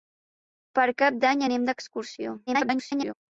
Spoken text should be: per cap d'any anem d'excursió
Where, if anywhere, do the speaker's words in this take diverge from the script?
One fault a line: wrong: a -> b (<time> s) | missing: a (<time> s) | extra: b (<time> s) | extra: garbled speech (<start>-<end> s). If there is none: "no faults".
extra: garbled speech (2.5-3.1 s)